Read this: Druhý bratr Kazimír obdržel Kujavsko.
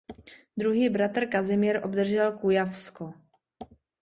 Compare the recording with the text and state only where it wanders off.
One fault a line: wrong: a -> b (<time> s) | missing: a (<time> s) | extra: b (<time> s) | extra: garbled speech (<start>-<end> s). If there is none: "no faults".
no faults